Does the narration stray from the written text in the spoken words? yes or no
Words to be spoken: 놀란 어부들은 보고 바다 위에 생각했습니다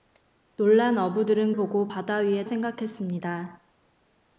no